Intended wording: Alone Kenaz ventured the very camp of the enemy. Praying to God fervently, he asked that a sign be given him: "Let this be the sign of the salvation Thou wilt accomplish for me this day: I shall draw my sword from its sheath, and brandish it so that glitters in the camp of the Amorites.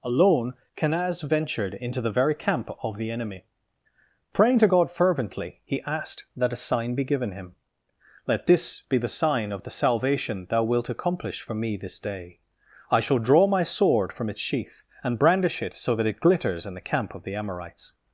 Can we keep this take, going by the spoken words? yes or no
no